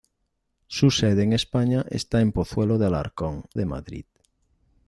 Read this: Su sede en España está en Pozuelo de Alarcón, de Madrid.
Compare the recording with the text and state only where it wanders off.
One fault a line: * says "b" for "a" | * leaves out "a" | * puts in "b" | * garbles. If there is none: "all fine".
all fine